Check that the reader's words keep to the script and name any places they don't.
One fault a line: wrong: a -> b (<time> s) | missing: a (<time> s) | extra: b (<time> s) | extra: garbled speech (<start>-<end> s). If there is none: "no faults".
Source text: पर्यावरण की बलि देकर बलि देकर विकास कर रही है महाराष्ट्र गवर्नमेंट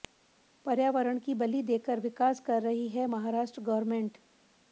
missing: बलि देकर (2.0 s)